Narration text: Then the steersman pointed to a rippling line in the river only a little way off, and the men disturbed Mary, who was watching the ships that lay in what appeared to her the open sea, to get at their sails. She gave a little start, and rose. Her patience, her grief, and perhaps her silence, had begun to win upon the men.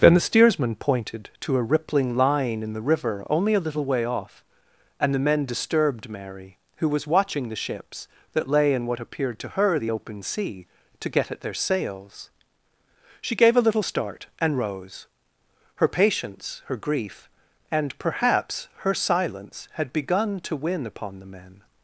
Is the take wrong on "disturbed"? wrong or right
right